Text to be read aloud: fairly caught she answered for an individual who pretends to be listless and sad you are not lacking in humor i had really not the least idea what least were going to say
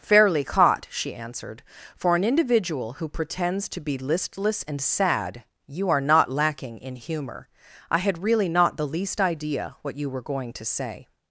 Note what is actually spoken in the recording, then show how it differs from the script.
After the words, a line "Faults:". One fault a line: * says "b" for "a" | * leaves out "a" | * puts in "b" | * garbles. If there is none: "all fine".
fairly caught she answered for an individual who pretends to be listless and sad you are not lacking in humor i had really not the least idea what you were going to say
Faults:
* says "you" for "least"